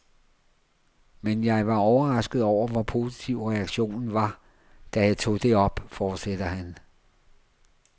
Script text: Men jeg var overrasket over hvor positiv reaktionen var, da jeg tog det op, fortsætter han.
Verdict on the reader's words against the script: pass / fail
pass